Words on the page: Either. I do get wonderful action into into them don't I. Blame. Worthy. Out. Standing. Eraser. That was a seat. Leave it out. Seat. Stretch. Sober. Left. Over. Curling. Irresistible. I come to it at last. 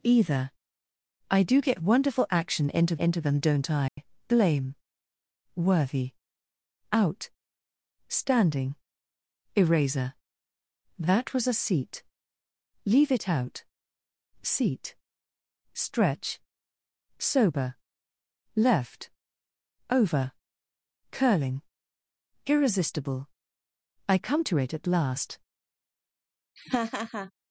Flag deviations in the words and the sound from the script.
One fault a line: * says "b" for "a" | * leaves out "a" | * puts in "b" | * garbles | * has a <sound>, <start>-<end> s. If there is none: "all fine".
* has a dropout, 3.9-4.0 s
* has a laugh, 26.6-27.3 s